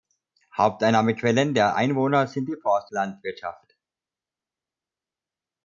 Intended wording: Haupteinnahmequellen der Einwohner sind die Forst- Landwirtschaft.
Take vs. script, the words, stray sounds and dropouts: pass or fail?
pass